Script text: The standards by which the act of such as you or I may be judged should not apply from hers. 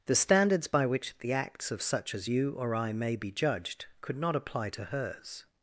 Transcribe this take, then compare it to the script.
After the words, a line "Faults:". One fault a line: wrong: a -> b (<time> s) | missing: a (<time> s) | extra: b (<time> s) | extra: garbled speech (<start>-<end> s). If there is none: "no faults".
The standards by which the acts of such as you or I may be judged could not apply to hers.
Faults:
wrong: act -> acts (1.3 s)
wrong: should -> could (4.0 s)
wrong: from -> to (4.7 s)